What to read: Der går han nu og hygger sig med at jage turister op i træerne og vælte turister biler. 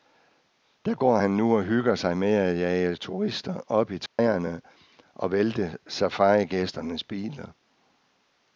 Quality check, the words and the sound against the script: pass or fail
fail